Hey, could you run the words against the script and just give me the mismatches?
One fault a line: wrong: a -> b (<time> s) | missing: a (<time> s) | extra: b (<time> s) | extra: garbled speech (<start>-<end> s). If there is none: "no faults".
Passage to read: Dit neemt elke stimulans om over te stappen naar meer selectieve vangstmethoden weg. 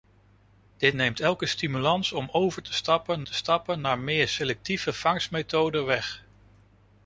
extra: te stappen (3.2 s)